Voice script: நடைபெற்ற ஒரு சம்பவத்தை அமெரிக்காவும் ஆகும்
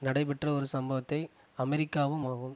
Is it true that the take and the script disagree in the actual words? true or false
false